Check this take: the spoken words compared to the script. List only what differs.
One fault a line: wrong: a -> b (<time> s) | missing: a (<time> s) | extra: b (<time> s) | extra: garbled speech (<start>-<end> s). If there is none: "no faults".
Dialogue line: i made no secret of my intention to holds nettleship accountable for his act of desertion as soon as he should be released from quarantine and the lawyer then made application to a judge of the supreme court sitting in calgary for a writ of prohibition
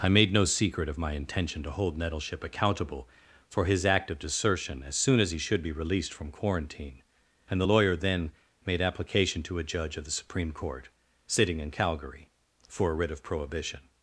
wrong: holds -> hold (1.7 s)